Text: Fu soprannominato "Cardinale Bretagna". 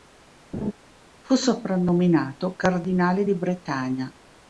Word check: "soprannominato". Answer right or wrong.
right